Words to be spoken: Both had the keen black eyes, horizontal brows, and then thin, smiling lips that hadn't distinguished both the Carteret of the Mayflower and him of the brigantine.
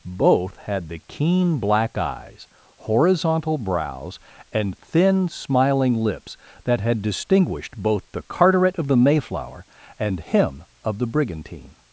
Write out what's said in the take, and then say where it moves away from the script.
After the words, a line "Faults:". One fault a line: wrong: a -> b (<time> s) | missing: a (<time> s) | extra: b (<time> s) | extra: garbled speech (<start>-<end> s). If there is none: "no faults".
Both had the keen black eyes, horizontal brows, and thin, smiling lips that had distinguished both the Carteret of the Mayflower and him of the brigantine.
Faults:
missing: then (4.8 s)
wrong: hadn't -> had (6.8 s)